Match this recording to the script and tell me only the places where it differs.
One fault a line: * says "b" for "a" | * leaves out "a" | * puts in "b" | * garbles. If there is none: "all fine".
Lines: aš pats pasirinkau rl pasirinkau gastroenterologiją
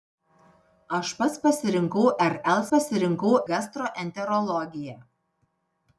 all fine